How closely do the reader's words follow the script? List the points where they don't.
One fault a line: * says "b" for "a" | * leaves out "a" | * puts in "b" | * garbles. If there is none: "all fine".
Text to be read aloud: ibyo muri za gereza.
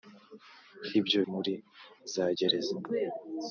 all fine